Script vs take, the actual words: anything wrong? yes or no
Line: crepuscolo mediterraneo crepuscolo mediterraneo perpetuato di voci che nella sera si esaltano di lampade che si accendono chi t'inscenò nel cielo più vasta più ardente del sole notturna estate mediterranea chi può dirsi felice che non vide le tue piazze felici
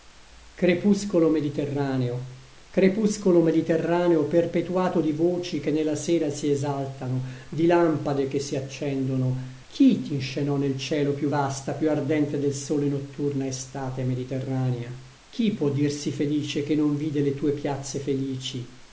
no